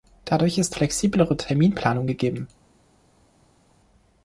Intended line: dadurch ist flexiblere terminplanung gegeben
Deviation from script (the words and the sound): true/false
false